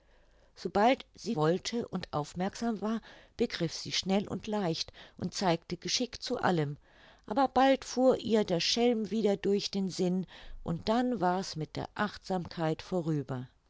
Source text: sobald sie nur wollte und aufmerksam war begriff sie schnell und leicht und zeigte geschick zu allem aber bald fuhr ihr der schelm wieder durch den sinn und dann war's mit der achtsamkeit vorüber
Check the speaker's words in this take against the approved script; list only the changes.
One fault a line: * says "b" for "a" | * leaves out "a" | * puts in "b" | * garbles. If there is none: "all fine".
* leaves out "nur"